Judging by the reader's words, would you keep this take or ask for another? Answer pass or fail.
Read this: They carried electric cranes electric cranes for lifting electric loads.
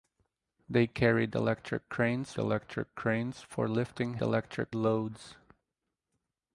pass